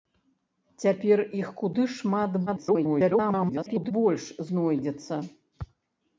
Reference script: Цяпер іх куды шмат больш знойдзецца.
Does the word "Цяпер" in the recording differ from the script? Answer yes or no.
no